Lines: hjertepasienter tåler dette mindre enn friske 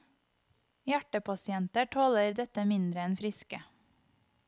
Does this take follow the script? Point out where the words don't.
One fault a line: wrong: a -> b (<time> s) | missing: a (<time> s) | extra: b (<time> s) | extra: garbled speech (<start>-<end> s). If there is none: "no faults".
no faults